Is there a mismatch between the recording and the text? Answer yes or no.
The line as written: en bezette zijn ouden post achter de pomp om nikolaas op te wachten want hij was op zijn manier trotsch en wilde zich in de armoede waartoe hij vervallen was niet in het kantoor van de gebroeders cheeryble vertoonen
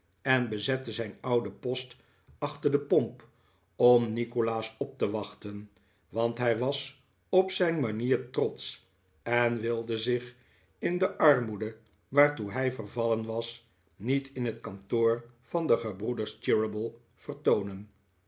no